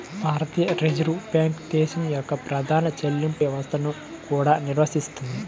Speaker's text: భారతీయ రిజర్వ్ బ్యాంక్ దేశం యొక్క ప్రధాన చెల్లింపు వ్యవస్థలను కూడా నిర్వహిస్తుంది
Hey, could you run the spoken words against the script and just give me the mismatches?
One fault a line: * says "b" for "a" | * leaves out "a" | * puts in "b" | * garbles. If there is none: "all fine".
all fine